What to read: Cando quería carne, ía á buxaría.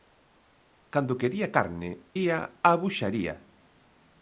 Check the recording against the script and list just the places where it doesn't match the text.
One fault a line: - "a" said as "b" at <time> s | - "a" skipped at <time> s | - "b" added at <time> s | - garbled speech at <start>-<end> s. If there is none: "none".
none